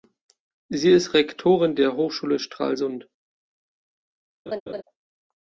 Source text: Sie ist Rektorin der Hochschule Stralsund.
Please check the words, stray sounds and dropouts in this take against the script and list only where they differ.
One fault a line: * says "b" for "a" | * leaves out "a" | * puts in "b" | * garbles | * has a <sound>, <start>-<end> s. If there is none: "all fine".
* has a laugh, 4.5-4.8 s